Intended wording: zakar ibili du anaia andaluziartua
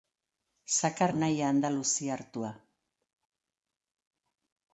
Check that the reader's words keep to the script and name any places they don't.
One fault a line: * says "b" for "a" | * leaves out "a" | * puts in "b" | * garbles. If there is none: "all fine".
* leaves out "ibili du"